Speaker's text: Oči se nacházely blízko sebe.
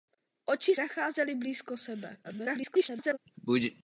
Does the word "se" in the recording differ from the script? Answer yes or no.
yes